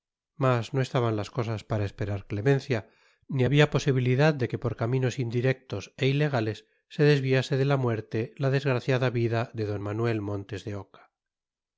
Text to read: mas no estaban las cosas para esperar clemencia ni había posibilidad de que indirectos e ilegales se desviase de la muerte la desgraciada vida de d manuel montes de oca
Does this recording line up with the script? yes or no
no